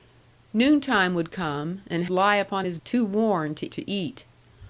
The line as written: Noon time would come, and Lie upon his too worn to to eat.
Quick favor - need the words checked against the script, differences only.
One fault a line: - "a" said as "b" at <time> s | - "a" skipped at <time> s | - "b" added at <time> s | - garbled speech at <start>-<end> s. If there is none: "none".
none